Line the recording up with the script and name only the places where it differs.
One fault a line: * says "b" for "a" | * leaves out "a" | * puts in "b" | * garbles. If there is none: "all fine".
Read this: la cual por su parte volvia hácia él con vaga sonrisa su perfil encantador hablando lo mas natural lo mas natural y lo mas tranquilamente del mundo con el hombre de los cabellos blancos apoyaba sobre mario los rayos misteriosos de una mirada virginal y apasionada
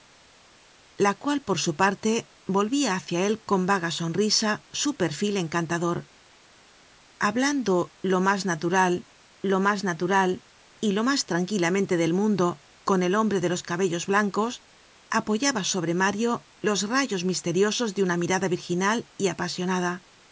all fine